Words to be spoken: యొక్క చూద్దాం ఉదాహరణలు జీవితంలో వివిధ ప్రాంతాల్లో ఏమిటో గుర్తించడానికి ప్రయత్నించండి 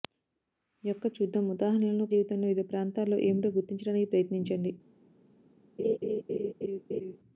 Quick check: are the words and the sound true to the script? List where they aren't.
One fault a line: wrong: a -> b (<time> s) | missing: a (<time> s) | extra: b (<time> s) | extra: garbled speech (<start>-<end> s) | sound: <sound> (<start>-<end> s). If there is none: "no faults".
sound: laugh (5.8-7.2 s)